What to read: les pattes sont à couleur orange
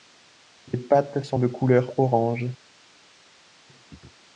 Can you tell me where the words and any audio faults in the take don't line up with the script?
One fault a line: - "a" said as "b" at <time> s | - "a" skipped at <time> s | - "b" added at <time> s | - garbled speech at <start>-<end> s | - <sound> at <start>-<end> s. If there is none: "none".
- "à" said as "de" at 1.3 s